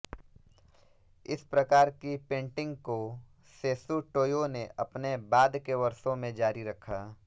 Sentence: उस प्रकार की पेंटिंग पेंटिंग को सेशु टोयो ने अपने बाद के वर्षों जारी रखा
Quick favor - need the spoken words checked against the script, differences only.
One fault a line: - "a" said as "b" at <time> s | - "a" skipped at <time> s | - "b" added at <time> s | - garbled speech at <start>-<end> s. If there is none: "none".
- "उस" said as "इस" at 1.2 s
- "पेंटिंग" skipped at 2.8 s
- "में" added at 6.1 s